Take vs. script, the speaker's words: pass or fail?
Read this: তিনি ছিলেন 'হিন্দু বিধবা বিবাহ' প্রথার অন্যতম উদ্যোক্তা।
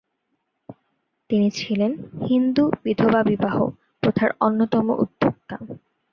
pass